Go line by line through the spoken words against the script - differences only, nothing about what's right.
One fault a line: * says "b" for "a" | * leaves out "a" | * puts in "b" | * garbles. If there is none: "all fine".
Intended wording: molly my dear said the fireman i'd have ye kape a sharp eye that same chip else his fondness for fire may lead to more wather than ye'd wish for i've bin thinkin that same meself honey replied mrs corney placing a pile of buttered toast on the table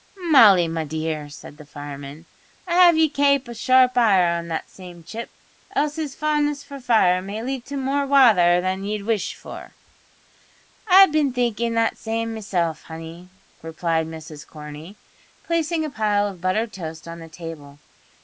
* puts in "on"